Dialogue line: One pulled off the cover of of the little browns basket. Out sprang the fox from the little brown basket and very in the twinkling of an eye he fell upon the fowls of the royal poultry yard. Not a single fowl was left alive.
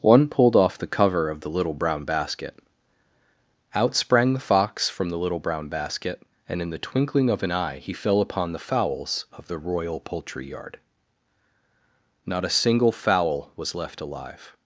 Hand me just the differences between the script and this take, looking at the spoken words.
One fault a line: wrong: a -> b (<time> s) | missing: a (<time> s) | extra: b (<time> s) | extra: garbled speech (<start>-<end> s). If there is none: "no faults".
missing: of (1.4 s)
wrong: browns -> brown (1.8 s)
missing: very (6.6 s)